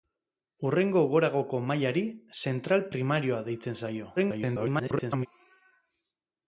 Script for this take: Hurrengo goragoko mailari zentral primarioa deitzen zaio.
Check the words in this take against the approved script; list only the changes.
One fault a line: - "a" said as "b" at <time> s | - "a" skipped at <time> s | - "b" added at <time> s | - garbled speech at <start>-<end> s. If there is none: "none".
- garbled speech at 4.2-5.3 s